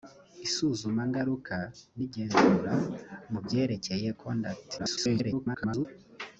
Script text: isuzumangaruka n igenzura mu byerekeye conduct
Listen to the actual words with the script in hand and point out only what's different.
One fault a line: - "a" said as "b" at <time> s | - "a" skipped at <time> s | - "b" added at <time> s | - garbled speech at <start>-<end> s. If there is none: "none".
- garbled speech at 4.8-5.9 s